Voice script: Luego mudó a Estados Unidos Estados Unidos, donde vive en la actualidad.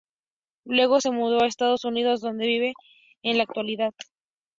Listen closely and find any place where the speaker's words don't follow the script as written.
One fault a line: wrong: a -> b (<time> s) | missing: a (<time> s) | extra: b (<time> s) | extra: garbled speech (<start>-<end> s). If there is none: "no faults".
extra: se (1.0 s)
missing: Estados Unidos (2.2 s)